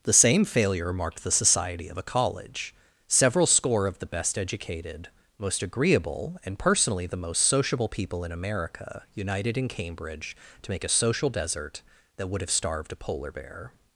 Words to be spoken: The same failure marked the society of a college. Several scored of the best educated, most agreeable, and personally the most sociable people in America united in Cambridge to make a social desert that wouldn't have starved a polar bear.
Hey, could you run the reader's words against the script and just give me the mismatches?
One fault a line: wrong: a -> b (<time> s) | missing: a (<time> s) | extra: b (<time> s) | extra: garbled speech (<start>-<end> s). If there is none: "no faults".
wrong: scored -> score (3.5 s)
wrong: wouldn't -> would (12.3 s)